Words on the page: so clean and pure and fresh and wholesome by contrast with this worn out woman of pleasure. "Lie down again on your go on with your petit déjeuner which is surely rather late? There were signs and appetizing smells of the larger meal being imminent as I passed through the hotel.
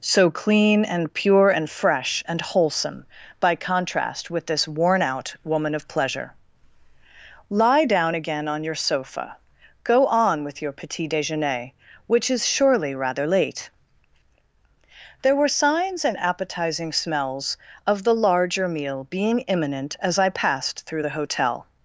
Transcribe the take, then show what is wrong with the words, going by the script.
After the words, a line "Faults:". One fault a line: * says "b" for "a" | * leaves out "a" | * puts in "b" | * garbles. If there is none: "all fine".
so clean and pure and fresh and wholesome by contrast with this worn out woman of pleasure. "Lie down again on your sofa, go on with your petit déjeuner which is surely rather late? There were signs and appetizing smells of the larger meal being imminent as I passed through the hotel.
Faults:
* puts in "sofa"